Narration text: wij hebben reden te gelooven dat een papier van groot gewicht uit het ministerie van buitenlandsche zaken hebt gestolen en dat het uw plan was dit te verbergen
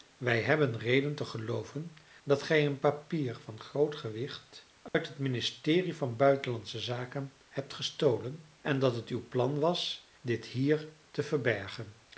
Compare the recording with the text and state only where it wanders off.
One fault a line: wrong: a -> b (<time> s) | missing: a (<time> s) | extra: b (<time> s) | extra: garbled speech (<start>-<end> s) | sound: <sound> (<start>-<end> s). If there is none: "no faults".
extra: gij (2.4 s)
sound: dropout (4.9-4.9 s)
extra: hier (10.5 s)